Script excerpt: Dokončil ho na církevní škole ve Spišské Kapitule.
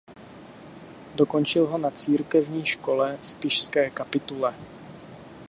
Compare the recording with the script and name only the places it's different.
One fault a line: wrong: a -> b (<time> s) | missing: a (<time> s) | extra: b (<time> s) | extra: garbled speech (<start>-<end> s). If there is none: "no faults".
missing: ve (3.2 s)